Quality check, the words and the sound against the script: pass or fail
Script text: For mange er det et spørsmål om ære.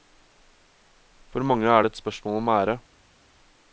pass